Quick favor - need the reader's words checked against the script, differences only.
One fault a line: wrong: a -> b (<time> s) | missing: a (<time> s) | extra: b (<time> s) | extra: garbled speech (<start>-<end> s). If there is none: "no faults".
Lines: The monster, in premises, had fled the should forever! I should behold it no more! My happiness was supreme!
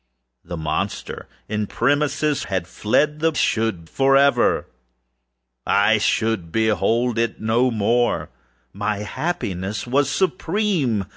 no faults